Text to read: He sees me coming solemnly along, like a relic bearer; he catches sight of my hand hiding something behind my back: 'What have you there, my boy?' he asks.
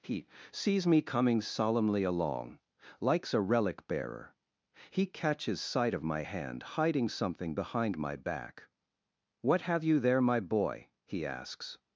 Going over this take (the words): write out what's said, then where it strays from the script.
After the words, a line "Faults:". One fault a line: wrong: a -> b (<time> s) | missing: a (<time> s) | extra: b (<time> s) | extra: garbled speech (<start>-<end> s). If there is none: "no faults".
He sees me coming solemnly along, likes a relic bearer; he catches sight of my hand hiding something behind my back: 'What have you there, my boy?' he asks.
Faults:
wrong: like -> likes (3.0 s)